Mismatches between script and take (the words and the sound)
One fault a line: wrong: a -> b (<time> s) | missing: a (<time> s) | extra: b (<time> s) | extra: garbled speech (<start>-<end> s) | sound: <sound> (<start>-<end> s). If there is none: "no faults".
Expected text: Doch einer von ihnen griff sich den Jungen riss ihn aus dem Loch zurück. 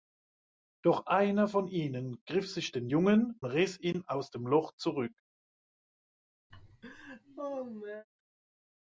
sound: laugh (6.5-8.0 s)